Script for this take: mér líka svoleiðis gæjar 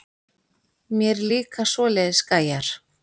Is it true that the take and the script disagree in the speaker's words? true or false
false